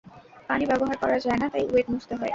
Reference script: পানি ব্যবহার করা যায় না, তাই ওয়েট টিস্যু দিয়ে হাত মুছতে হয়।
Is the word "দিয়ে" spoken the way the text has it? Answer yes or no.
no